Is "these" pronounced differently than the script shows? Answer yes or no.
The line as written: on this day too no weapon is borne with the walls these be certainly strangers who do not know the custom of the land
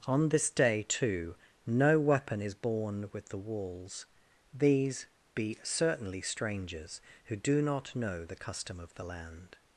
no